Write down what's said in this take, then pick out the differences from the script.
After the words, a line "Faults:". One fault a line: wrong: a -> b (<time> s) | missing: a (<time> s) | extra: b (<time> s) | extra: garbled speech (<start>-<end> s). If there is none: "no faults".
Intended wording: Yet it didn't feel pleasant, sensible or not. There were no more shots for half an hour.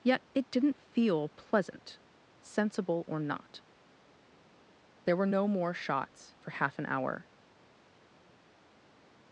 Yet it didn't feel pleasant, sensible or not. There were no more shots for half an hour.
Faults:
no faults